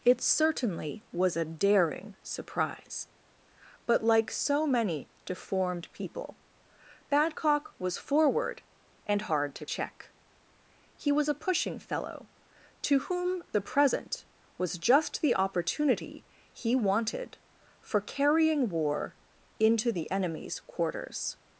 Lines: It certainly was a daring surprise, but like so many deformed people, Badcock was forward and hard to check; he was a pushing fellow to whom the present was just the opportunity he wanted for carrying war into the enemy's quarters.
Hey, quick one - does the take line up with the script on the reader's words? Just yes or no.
yes